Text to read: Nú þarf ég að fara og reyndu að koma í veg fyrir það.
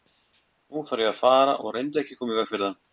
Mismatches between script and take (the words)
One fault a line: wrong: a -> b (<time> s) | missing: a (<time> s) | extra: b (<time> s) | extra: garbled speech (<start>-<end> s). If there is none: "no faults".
extra: ekki (2.0 s)